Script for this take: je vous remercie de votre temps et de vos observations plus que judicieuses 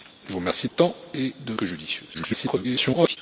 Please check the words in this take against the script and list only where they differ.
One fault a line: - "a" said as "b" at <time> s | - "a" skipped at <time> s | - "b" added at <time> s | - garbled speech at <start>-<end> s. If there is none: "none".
- "de votre" skipped at 0.7 s
- "vos observations plus" skipped at 1.5 s
- garbled speech at 2.1-3.2 s